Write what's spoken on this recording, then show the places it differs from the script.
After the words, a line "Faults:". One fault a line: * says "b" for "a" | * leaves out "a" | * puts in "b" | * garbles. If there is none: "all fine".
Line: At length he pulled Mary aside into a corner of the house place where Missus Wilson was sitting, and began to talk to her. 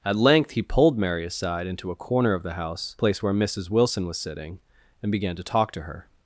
At length he pulled Mary aside into a corner of the house place where Missus Wilson was sitting, and began to talk to her.
Faults:
all fine